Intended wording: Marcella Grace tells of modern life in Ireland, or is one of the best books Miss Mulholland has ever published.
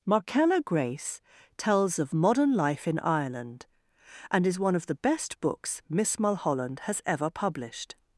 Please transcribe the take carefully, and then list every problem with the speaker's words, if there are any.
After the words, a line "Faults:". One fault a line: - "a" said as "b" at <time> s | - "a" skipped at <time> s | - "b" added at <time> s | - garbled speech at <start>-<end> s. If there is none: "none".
Marcella Grace tells of modern life in Ireland, and is one of the best books Miss Mulholland has ever published.
Faults:
- "or" said as "and" at 4.3 s